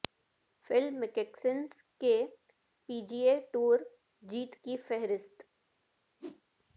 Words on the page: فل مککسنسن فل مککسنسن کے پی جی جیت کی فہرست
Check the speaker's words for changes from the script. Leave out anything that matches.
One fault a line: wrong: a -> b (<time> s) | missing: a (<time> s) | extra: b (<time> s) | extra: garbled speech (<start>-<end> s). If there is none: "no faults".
missing: فل مککسنسن (1.6 s)
extra: اے ٹور (3.3 s)